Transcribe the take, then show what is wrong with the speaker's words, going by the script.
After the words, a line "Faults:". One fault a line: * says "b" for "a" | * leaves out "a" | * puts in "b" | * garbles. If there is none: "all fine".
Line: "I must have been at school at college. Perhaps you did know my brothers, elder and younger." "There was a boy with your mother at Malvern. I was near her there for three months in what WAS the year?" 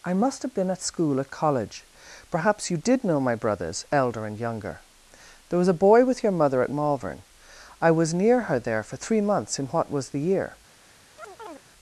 "I must have been at school at college. Perhaps you did know my brothers, elder and younger." "There was a boy with your mother at Malvern. I was near her there for three months in what WAS the year?"
Faults:
all fine